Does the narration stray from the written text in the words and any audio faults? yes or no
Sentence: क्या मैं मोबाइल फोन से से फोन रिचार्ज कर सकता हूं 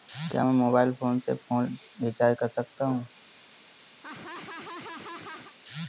yes